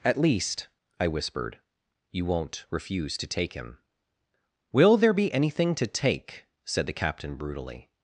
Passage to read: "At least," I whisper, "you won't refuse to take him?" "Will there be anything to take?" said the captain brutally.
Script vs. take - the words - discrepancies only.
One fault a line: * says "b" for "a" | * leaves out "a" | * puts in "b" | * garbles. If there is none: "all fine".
* says "whispered" for "whisper"